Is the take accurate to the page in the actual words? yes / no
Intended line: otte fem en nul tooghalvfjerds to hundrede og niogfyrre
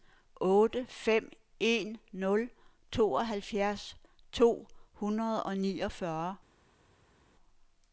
yes